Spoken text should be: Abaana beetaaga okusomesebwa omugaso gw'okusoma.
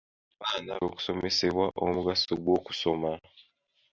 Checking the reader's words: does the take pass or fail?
fail